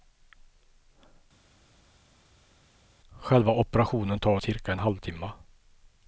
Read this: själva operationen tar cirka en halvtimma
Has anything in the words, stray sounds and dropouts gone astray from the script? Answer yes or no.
no